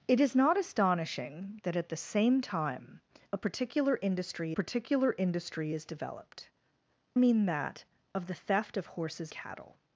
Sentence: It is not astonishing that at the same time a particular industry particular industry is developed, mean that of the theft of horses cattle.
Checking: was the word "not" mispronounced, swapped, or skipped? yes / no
no